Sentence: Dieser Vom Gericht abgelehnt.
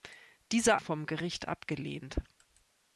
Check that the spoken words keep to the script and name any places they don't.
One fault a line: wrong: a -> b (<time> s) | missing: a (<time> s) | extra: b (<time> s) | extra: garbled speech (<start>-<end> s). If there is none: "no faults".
no faults